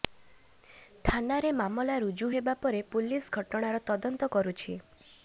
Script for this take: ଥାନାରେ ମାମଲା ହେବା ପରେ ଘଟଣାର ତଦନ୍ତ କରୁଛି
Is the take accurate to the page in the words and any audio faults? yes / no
no